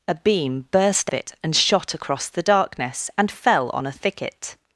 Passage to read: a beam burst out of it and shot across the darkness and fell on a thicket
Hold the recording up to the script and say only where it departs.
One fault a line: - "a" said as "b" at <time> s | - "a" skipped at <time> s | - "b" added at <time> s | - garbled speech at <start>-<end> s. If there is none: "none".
- "out" skipped at 1.1 s